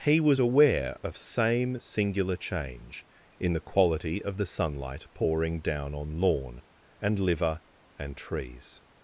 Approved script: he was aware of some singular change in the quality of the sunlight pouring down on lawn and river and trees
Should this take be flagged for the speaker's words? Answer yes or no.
yes